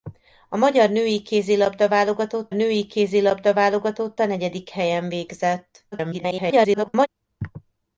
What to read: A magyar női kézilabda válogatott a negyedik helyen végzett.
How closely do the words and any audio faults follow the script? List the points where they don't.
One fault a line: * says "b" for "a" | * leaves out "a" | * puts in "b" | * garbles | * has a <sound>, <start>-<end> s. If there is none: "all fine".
* puts in "női kézilabda válogatott"
* garbles